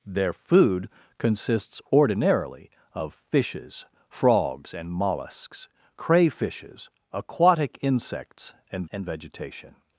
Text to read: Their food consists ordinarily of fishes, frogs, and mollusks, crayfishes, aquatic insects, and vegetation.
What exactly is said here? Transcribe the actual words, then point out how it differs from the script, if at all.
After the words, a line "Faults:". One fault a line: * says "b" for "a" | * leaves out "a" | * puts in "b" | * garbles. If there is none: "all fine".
Their food consists ordinarily of fishes, frogs, and mollusks, crayfishes, aquatic insects, and and vegetation.
Faults:
* puts in "and"